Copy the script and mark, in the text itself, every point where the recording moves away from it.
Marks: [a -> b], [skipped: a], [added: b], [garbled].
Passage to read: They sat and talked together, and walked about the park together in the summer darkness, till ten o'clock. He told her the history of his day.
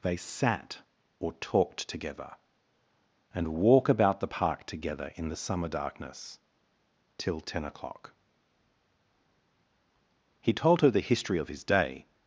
They sat [and -> or] talked together, and [walked -> walk] about the park together in the summer darkness, till ten o'clock. He told her the history of his day.